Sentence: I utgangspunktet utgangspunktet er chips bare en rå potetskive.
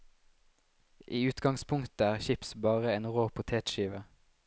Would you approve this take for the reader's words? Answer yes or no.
no